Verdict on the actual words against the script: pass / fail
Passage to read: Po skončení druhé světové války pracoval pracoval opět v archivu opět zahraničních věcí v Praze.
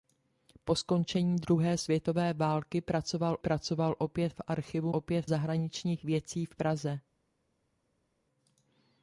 pass